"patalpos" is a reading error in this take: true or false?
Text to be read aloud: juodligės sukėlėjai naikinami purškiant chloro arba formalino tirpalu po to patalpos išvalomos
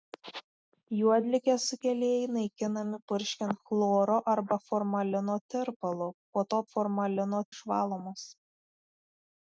true